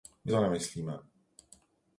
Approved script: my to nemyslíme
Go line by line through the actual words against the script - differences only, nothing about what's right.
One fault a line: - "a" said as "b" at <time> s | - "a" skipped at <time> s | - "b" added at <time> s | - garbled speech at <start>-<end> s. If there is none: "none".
none